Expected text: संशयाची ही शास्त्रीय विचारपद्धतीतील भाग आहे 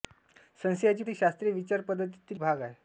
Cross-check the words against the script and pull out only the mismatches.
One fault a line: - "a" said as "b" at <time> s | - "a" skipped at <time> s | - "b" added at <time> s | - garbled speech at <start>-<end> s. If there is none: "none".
none